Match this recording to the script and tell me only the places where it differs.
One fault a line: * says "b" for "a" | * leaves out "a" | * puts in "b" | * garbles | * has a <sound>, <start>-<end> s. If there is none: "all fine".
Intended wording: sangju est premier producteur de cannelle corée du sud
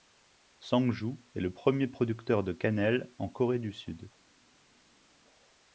* puts in "le"
* puts in "en"